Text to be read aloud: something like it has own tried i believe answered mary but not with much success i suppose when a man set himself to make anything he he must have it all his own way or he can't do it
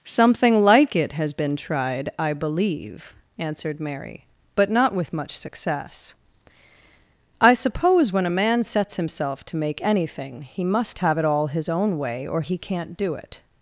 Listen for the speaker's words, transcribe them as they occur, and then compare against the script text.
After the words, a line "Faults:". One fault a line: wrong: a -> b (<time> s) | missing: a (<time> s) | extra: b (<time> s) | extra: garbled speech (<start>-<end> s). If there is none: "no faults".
something like it has been tried i believe answered mary but not with much success i suppose when a man sets himself to make anything he must have it all his own way or he can't do it
Faults:
wrong: own -> been (1.3 s)
wrong: set -> sets (8.6 s)
missing: he (10.6 s)